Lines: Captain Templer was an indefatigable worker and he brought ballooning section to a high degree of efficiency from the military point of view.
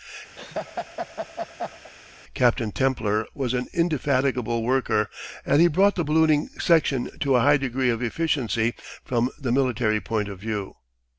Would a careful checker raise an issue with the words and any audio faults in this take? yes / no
yes